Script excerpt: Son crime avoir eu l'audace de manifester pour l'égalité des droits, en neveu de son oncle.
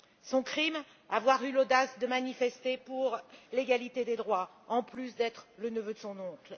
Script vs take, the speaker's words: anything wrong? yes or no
yes